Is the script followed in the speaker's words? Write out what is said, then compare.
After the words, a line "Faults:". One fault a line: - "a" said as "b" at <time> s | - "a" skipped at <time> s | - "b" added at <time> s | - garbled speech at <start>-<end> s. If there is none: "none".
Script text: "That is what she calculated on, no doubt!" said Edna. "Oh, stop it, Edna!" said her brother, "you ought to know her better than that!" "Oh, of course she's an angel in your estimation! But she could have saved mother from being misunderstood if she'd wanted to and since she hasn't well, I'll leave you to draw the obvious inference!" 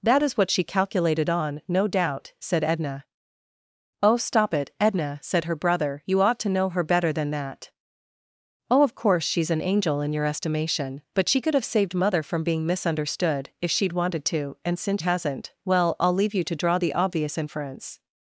"That is what she calculated on, no doubt!" said Edna. "Oh, stop it, Edna!" said her brother, "you ought to know her better than that!" "Oh, of course she's an angel in your estimation! But she could have saved mother from being misunderstood if she'd wanted to and since hasn't well, I'll leave you to draw the obvious inference!"
Faults:
- "she" skipped at 15.0 s